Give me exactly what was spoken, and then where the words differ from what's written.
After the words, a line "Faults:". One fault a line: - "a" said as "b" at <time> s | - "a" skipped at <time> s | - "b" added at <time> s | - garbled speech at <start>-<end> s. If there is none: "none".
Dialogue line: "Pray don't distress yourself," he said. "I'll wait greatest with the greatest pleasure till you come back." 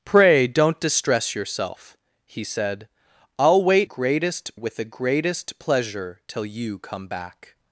"Pray don't distress yourself," he said. "I'll wait greatest with the greatest pleasure till you come back."
Faults:
none